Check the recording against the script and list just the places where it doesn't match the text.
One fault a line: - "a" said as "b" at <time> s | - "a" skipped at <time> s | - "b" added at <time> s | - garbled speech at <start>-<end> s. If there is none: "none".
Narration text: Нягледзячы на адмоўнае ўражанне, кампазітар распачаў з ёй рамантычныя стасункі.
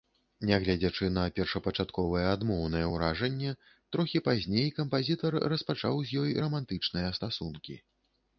- "першапачатковае" added at 1.4 s
- "трохі пазней" added at 4.0 s